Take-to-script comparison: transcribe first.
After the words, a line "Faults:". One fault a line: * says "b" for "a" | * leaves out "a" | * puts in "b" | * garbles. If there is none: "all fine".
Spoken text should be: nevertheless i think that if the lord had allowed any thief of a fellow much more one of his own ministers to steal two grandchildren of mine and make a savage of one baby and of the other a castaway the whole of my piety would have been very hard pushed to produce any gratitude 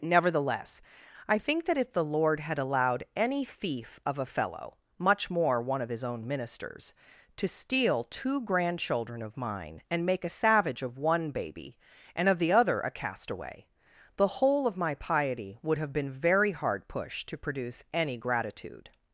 nevertheless i think that if the lord had allowed any thief of a fellow much more one of his own ministers to steal two grandchildren of mine and make a savage of one baby and of the other a castaway the whole of my piety would have been very hard pushed to produce any gratitude
Faults:
all fine